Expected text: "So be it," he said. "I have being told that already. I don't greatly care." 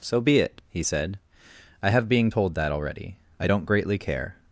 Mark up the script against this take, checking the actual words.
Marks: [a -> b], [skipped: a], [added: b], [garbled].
"So be it," he said. "I have being told that already. I don't greatly care."